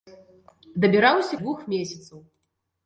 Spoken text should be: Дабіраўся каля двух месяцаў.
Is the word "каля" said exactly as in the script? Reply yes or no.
no